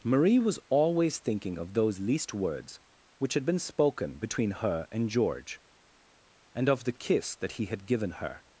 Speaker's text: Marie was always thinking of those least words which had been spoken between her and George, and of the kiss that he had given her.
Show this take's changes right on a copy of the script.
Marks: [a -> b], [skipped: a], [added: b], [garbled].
Marie was always thinking of those least words which had been spoken between her and George, and of the kiss that he had given her.